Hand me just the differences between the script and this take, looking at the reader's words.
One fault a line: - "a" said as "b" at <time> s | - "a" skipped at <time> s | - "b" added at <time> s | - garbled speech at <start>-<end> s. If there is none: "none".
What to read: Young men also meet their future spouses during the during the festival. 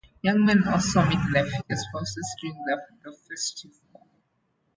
- "during the" skipped at 3.1 s